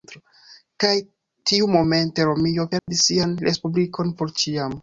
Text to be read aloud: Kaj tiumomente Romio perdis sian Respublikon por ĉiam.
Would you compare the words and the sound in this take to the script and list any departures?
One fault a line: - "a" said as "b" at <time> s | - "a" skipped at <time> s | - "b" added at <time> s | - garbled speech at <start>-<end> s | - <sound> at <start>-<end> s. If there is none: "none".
- dropout at 2.8-2.9 s